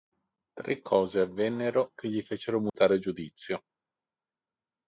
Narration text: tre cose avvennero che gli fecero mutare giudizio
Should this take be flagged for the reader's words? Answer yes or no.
no